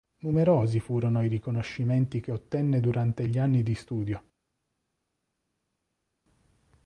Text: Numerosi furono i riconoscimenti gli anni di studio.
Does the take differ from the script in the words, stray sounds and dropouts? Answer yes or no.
yes